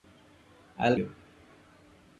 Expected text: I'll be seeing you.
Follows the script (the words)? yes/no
no